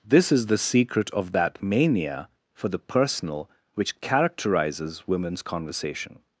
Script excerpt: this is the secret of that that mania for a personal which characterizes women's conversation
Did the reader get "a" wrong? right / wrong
wrong